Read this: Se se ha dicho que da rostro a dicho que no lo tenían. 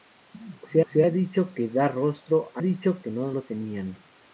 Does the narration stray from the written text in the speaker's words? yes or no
no